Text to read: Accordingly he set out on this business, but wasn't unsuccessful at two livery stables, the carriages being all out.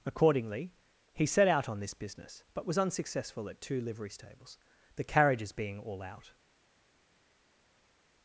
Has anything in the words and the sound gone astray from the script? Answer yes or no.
yes